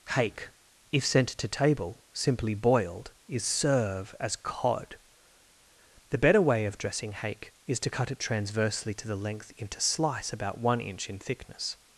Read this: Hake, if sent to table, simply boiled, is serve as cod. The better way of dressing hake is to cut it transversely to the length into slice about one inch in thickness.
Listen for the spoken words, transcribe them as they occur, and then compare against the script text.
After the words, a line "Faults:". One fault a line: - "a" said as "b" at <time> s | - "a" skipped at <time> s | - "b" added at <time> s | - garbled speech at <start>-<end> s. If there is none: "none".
Hake, if sent to table, simply boiled, is serve as cod. The better way of dressing hake is to cut it transversely to the length into slice about one inch in thickness.
Faults:
none